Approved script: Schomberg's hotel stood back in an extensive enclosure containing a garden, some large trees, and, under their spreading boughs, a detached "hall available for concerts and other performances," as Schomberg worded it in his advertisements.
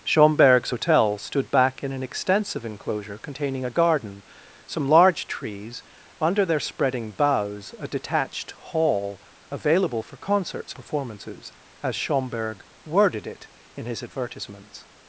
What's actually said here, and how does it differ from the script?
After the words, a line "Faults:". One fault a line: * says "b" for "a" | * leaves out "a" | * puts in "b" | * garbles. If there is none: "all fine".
Schomberg's hotel stood back in an extensive enclosure containing a garden, some large trees, under their spreading boughs, a detached "hall available for concerts performances," as Schomberg worded it in his advertisements.
Faults:
* leaves out "and"
* leaves out "and other"